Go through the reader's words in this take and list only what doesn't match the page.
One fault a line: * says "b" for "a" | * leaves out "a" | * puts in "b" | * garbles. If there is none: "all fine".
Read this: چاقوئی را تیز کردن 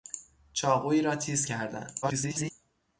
* garbles